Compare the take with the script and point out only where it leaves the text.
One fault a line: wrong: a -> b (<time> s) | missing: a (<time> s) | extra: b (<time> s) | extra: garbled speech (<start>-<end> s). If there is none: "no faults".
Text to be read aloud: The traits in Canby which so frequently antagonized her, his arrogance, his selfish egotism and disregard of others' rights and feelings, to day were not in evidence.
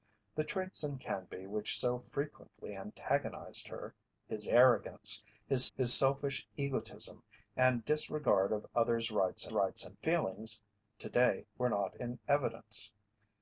extra: his (5.7 s)
extra: rights (9.5 s)